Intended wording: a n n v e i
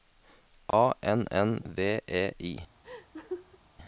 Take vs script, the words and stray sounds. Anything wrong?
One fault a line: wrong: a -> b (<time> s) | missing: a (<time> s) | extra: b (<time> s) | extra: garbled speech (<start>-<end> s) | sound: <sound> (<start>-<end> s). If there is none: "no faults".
sound: dropout (0.7-0.7 s)
sound: laugh (2.8-3.6 s)